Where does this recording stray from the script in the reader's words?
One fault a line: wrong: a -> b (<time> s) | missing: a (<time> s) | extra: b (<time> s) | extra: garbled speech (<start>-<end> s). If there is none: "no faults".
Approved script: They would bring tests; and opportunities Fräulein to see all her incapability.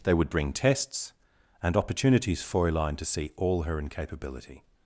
no faults